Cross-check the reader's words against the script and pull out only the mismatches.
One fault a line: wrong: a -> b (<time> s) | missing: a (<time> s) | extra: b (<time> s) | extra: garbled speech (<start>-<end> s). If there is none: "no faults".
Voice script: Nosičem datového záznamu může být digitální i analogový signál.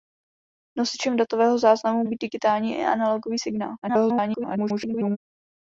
missing: může (2.0 s)
extra: garbled speech (3.8-5.2 s)